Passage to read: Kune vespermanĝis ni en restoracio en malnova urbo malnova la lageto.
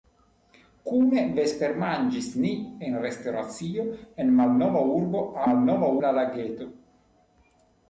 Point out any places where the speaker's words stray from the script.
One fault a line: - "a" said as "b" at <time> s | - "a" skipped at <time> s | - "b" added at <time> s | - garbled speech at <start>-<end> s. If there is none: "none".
none